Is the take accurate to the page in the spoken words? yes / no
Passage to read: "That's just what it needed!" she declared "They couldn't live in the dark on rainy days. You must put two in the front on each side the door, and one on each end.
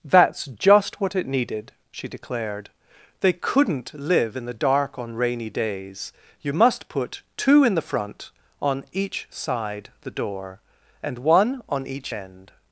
yes